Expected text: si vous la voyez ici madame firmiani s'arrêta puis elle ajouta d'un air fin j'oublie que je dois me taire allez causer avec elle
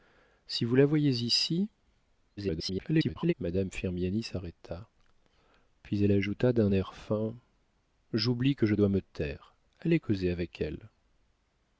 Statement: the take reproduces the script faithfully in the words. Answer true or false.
false